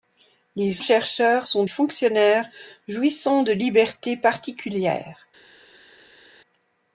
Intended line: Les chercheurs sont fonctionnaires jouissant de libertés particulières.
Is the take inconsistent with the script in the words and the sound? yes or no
no